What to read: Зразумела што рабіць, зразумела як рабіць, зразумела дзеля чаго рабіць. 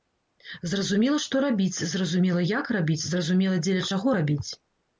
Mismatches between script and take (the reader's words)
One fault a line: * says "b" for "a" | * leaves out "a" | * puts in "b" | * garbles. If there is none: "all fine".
all fine